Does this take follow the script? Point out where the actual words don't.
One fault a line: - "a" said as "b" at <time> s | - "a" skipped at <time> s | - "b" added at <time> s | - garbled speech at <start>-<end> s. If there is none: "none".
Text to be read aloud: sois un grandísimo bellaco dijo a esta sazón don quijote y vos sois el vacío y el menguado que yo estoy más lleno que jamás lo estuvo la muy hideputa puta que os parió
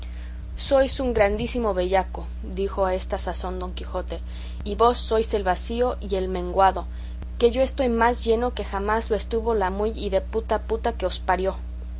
none